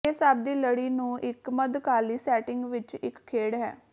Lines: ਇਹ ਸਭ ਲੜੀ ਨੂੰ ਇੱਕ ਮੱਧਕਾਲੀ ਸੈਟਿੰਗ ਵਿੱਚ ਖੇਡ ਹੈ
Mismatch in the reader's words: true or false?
true